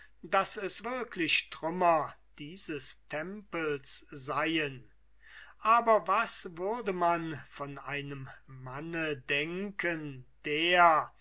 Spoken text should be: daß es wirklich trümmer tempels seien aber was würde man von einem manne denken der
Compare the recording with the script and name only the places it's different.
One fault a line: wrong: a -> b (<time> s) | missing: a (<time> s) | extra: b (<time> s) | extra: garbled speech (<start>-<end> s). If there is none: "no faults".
extra: dieses (2.4 s)